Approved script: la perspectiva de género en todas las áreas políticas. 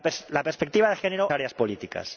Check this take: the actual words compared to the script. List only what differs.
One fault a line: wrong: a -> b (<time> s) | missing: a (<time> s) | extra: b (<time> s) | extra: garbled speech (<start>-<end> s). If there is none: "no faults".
missing: en todas las (1.3 s)